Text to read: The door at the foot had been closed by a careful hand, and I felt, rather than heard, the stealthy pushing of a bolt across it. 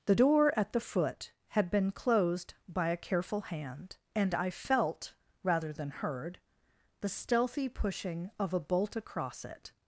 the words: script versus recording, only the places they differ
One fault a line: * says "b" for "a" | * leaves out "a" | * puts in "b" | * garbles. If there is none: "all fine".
all fine